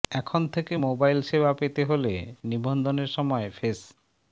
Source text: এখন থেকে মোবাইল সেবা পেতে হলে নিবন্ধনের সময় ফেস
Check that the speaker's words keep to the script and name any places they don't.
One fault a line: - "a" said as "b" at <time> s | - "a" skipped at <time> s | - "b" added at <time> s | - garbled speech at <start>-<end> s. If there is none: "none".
none